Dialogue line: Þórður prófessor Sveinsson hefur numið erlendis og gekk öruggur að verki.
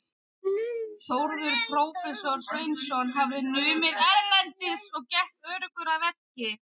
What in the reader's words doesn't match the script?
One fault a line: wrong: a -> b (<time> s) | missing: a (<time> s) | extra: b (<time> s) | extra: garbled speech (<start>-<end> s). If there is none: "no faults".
wrong: hefur -> hafði (3.2 s)